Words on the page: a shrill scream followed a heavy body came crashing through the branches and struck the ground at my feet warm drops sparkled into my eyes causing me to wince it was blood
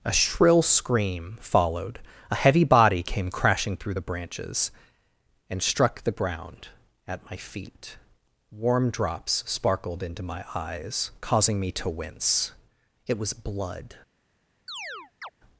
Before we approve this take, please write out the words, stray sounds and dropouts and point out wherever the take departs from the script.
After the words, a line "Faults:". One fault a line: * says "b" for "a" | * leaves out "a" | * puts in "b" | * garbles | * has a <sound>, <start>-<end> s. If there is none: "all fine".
a shrill scream followed a heavy body came crashing through the branches and struck the ground at my feet warm drops sparkled into my eyes causing me to wince it was blood
Faults:
* has a chirp, 14.7-15.3 s